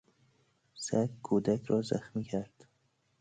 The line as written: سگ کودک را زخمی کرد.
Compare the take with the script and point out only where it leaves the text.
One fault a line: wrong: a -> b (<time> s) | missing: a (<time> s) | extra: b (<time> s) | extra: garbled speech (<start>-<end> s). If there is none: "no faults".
no faults